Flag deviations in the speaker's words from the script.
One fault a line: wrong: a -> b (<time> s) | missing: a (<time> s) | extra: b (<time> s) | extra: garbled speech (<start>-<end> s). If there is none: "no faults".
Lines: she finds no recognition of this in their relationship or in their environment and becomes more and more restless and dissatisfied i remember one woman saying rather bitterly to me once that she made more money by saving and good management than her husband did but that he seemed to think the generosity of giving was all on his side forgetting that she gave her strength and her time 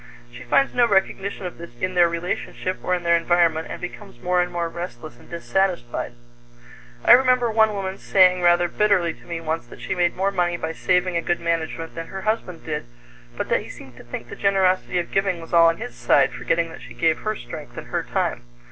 no faults